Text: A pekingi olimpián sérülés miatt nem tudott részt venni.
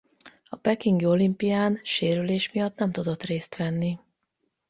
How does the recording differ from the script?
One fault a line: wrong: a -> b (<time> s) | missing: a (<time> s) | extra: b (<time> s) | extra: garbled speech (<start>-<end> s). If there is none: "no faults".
no faults